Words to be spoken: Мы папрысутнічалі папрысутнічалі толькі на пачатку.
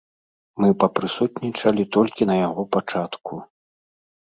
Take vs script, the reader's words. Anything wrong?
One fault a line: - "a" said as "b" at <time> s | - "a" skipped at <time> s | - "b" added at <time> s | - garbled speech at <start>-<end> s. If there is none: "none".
- "папрысутнічалі" skipped at 1.8 s
- "яго" added at 2.5 s